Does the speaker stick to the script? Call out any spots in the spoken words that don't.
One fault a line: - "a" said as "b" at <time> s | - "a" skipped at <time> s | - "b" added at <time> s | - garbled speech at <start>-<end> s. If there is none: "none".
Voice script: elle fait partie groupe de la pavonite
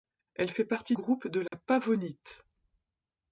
none